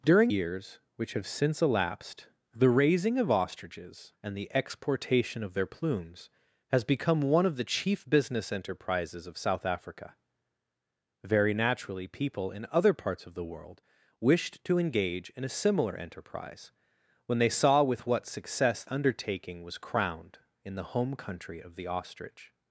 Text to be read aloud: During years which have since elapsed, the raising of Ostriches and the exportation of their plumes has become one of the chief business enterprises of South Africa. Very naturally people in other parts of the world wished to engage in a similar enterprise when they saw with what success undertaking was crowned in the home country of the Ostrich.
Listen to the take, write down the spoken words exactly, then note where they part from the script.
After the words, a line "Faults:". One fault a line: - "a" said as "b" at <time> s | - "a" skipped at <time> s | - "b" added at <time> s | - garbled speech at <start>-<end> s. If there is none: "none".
During years which have since elapsed, the raising of Ostriches and the exportation of their plumes has become one of the chief business enterprises of South Africa. Very naturally people in other parts of the world wished to engage in a similar enterprise when they saw with what success undertaking was crowned in the home country of the Ostrich.
Faults:
none